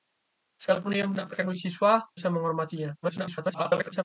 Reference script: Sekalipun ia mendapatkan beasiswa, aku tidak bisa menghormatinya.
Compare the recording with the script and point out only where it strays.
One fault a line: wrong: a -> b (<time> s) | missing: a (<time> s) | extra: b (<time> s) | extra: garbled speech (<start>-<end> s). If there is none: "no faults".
missing: aku tidak (1.9 s)
extra: garbled speech (3.0-4.0 s)